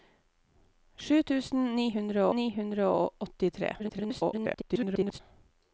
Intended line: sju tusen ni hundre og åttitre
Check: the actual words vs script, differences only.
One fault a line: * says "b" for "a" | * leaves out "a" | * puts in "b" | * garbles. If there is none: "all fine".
* puts in "ni hundre"
* garbles